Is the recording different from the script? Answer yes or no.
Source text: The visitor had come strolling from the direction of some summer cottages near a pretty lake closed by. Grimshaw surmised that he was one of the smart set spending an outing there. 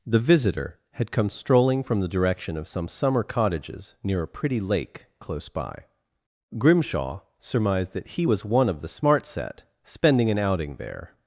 yes